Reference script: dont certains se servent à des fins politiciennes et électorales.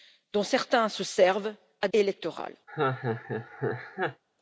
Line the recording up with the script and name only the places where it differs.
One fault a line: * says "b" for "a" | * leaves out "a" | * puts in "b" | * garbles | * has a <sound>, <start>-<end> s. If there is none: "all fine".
* leaves out "des fins politiciennes"
* has a laugh, 2.7-4.2 s